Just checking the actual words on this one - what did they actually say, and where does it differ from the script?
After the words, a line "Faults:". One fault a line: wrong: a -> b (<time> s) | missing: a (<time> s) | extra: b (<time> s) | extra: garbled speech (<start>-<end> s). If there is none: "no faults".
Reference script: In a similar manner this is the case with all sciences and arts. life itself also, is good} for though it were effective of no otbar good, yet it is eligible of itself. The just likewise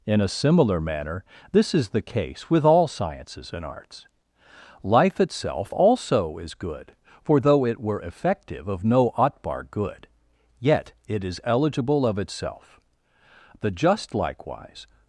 In a similar manner this is the case with all sciences and arts. life itself also, is good} for though it were effective of no otbar good, yet it is eligible of itself. The just likewise
Faults:
no faults